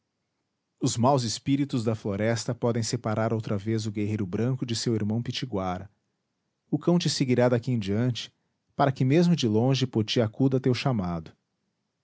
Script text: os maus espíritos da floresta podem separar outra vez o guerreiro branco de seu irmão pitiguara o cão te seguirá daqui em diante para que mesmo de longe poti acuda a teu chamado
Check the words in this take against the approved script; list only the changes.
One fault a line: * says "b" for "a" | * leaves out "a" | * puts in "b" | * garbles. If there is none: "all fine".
all fine